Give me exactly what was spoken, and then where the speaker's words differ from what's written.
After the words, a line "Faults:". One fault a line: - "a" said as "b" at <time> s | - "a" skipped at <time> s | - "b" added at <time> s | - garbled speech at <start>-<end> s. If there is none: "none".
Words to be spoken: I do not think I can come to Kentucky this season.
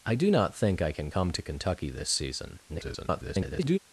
I do not think I can come to Kentucky this season. [garbled]
Faults:
- garbled speech at 2.7-3.8 s